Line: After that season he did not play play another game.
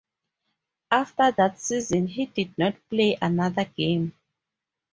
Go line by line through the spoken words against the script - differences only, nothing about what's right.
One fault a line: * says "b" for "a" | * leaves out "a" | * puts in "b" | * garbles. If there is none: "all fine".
* leaves out "play"